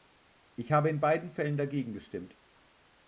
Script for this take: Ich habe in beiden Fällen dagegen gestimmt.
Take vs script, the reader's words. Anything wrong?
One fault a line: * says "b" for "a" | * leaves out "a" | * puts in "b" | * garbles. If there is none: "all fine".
all fine